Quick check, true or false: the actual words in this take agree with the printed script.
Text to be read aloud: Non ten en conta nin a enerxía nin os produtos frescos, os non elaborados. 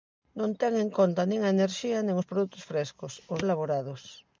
false